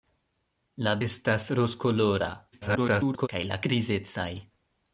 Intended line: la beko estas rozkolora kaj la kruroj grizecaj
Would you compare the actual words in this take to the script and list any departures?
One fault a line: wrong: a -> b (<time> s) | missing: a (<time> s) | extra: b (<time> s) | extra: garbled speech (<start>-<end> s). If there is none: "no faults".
missing: beko (0.9 s)
extra: garbled speech (2.5-3.3 s)
missing: kruroj (3.6 s)